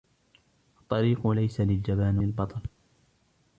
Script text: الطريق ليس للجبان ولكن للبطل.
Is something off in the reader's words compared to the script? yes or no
yes